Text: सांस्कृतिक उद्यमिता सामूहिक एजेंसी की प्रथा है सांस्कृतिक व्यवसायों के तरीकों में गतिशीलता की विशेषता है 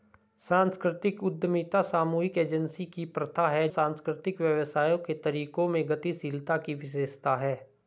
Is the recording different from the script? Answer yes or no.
no